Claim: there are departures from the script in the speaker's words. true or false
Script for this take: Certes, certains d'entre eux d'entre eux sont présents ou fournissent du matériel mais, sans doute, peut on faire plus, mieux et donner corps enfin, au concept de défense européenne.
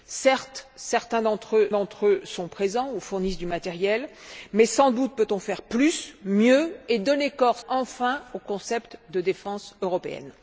false